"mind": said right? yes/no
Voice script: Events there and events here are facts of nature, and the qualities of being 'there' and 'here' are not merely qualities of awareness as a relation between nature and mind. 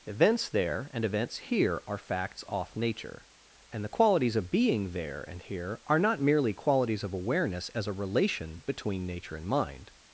yes